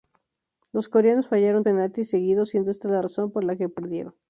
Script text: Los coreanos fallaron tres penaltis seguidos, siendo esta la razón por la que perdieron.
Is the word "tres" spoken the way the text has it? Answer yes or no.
no